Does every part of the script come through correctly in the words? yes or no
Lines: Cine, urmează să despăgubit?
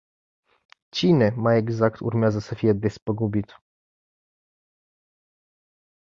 no